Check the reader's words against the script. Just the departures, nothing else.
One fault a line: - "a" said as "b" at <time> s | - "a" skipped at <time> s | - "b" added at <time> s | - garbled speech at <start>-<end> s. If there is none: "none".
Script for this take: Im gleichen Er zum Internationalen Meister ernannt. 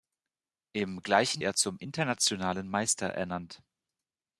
none